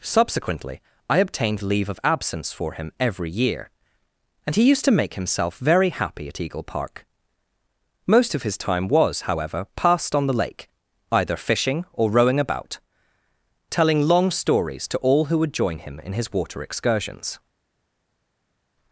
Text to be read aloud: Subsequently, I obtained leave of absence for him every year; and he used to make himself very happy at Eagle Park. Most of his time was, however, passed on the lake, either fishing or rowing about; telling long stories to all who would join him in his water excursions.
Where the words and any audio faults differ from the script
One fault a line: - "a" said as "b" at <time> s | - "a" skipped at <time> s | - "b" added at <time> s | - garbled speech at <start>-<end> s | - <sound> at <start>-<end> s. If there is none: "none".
none